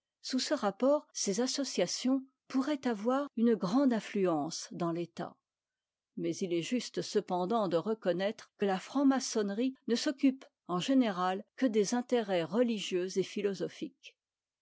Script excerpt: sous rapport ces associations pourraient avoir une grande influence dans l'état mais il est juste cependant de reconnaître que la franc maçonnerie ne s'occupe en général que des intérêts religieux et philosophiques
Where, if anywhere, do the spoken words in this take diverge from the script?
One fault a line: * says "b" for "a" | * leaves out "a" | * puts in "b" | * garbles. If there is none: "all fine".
* puts in "ce"